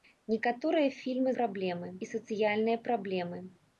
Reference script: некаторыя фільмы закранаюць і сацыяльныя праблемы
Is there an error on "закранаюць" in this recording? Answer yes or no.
yes